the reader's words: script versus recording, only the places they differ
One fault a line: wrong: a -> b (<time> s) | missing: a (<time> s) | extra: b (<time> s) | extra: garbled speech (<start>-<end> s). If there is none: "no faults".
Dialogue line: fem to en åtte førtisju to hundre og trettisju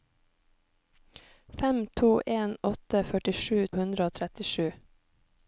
missing: to (3.7 s)